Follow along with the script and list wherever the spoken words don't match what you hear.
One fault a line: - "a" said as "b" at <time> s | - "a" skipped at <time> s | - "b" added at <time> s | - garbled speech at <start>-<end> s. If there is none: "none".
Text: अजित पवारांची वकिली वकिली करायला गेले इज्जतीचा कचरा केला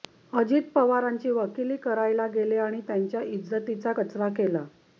- "वकिली" skipped at 1.8 s
- "आणि त्यांच्या" added at 2.6 s